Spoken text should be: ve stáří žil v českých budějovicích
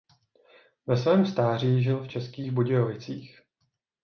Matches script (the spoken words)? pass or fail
fail